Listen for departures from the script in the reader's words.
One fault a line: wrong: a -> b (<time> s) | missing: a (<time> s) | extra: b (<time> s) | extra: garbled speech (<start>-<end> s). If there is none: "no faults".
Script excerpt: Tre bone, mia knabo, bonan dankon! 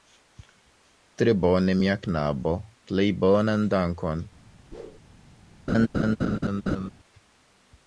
extra: plej (2.9 s)